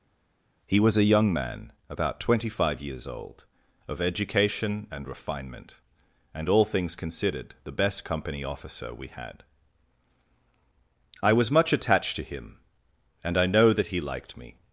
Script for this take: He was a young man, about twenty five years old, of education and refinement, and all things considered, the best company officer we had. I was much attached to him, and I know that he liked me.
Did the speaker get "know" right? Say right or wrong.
right